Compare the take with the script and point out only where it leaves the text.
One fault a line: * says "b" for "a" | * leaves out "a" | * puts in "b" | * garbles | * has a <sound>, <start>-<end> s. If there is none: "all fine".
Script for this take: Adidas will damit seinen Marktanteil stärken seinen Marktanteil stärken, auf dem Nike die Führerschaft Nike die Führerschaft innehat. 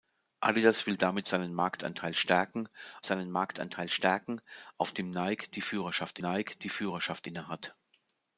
all fine